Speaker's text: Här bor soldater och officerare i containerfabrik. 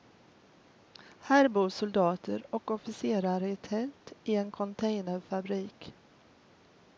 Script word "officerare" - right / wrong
right